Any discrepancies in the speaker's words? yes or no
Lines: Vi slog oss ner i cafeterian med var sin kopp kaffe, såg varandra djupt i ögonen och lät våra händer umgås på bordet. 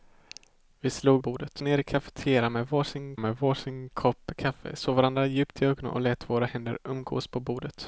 yes